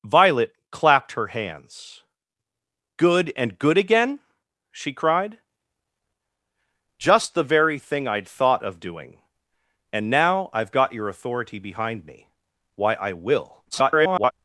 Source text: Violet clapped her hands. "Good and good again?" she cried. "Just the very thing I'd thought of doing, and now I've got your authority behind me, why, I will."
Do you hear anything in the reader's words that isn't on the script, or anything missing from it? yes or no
yes